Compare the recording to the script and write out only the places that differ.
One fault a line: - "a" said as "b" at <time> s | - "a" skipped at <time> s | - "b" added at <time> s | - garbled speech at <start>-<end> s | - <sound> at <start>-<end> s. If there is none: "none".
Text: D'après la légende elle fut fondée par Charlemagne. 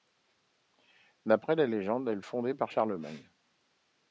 - "fut" skipped at 2.2 s